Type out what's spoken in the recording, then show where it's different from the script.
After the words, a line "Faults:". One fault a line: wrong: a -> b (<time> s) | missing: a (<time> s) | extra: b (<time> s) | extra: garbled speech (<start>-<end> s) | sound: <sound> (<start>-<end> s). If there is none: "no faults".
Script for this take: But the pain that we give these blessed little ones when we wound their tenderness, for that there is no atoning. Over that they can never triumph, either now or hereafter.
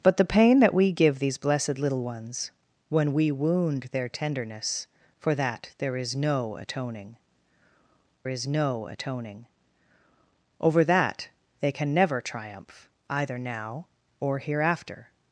But the pain that we give these blessed little ones when we wound their tenderness, for that there is no atoning is no atoning. Over that they can never triumph, either now or hereafter.
Faults:
extra: is no atoning (8.3 s)